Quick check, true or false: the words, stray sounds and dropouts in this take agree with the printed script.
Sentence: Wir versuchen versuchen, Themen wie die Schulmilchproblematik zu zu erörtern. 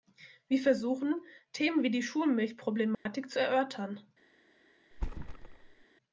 false